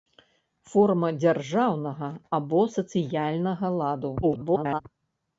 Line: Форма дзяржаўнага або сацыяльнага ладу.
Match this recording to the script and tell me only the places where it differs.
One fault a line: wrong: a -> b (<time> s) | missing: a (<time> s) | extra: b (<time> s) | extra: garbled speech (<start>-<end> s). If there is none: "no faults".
extra: garbled speech (4.2-4.8 s)